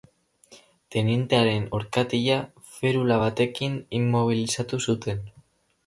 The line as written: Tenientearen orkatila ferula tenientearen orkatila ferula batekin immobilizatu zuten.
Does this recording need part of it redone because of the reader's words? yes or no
yes